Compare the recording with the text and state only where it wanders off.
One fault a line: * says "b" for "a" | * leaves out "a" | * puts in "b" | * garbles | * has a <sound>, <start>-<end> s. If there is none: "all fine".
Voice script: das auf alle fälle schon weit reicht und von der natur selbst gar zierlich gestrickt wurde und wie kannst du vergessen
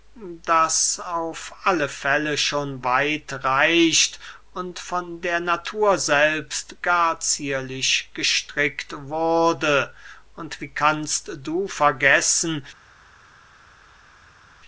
all fine